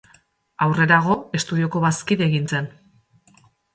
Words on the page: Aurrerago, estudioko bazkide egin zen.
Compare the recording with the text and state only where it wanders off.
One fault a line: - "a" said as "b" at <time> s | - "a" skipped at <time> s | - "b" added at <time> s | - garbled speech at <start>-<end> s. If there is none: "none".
none